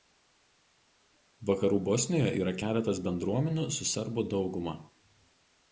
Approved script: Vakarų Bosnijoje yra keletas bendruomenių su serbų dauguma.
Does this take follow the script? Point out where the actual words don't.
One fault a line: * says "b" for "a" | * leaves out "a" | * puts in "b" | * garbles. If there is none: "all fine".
all fine